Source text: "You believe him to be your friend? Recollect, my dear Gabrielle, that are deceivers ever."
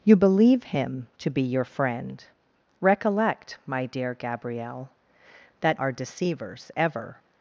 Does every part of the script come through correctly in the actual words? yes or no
yes